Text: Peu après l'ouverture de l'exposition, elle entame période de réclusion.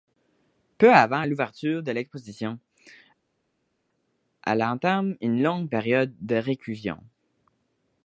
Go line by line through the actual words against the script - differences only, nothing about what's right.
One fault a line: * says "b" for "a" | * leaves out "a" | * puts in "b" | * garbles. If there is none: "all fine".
* says "avant" for "après"
* puts in "une longue"